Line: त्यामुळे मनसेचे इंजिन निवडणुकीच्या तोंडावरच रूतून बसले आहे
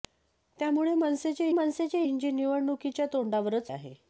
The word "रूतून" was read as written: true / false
false